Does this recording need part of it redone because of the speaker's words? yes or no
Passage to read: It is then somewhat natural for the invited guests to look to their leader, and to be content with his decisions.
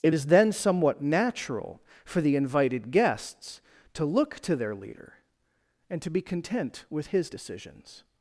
no